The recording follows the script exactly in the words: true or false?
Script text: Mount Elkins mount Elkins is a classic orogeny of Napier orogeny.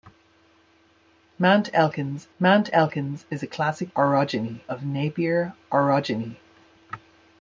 true